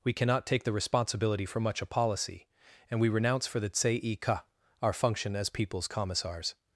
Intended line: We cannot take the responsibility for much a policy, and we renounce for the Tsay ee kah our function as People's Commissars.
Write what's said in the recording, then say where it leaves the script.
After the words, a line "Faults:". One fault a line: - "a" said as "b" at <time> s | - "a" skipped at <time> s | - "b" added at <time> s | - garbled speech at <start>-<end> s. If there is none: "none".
We cannot take the responsibility for much a policy, and we renounce for the Tsay ee kah our function as People's Commissars.
Faults:
none